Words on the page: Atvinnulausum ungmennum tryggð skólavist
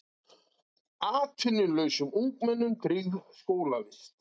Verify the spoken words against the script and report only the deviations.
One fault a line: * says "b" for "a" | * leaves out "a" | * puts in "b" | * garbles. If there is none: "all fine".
all fine